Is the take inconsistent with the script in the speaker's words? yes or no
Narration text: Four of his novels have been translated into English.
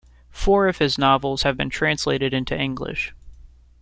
no